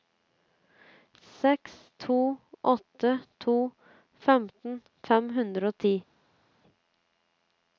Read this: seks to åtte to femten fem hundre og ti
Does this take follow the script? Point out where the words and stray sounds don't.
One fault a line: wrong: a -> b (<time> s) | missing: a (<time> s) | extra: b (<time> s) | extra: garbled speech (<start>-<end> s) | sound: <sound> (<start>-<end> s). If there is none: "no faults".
no faults